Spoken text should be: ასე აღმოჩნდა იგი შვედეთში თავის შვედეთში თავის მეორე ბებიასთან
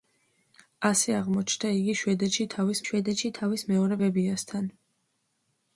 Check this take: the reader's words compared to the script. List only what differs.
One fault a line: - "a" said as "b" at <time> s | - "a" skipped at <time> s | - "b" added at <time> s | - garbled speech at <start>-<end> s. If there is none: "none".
none